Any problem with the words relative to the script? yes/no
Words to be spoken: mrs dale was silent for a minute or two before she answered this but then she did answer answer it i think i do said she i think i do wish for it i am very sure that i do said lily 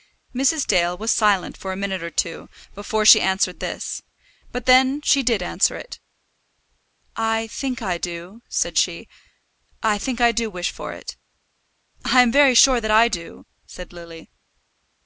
yes